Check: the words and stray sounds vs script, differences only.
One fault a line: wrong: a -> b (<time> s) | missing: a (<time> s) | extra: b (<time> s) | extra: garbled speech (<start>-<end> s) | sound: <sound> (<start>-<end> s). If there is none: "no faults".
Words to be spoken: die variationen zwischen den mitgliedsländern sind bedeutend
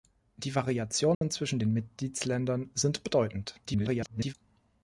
sound: dropout (1.1-1.2 s)
extra: garbled speech (3.7-4.3 s)